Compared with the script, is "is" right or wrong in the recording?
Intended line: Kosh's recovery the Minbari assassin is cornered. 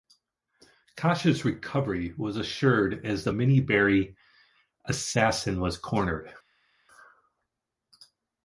wrong